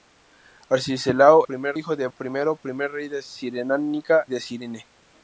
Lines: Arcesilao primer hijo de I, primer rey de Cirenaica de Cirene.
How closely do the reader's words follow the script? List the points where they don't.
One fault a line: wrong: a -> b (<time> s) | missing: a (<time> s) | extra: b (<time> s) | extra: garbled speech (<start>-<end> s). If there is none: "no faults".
no faults